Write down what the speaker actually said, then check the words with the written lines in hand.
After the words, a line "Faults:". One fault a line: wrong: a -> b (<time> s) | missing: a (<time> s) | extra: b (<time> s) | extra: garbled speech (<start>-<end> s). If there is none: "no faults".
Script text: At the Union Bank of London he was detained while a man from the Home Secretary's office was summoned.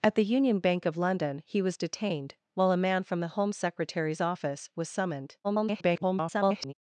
At the Union Bank of London he was detained while a man from the Home Secretary's office was summoned. [garbled]
Faults:
extra: garbled speech (5.4-6.7 s)